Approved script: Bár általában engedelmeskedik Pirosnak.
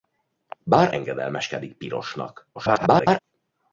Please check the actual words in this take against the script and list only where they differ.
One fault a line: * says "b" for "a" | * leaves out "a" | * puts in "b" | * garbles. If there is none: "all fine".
* leaves out "általában"
* garbles